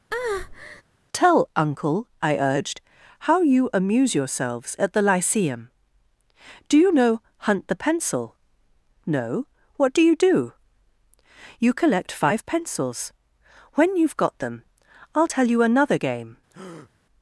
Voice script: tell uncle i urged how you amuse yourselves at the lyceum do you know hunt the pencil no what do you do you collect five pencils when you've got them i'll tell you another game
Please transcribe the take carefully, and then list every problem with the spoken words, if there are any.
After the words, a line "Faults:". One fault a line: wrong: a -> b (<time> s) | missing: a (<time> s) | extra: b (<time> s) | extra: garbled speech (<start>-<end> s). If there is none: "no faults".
tell uncle i urged how you amuse yourselves at the lyceum do you know hunt the pencil no what do you do you collect five pencils when you've got them i'll tell you another game
Faults:
no faults